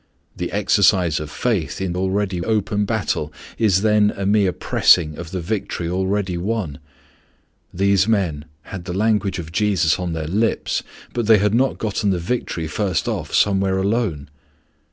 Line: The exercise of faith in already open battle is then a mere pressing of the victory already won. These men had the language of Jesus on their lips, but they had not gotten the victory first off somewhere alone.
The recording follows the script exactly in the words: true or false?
true